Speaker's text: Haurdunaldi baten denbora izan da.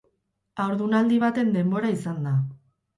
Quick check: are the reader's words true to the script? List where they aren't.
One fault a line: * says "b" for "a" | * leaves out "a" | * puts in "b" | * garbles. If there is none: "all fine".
all fine